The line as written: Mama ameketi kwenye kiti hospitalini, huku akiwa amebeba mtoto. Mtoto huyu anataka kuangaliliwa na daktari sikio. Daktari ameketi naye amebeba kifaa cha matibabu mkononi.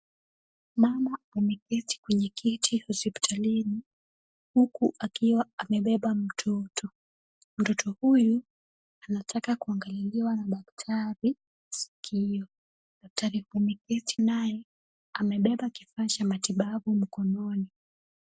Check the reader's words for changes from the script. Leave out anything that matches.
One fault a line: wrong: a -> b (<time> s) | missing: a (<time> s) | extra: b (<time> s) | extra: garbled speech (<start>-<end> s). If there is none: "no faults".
no faults